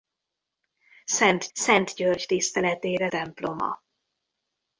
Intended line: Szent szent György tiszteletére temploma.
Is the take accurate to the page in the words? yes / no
yes